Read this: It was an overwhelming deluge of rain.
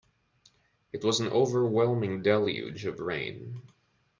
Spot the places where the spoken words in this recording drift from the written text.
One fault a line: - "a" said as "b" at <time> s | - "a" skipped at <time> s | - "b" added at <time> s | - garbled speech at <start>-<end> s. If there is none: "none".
none